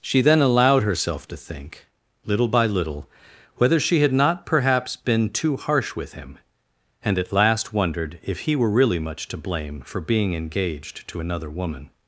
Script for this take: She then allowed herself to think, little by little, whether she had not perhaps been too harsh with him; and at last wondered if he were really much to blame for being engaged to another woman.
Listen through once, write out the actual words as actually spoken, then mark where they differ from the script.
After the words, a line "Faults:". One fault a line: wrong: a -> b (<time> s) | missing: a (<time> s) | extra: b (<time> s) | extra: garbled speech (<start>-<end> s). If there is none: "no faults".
She then allowed herself to think, little by little, whether she had not perhaps been too harsh with him; and at last wondered if he were really much to blame for being engaged to another woman.
Faults:
no faults